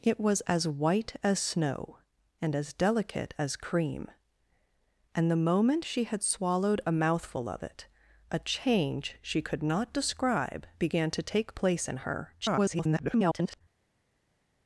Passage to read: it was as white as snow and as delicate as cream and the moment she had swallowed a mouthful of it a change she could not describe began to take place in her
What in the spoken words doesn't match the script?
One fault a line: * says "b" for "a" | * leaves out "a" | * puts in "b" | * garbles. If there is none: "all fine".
* garbles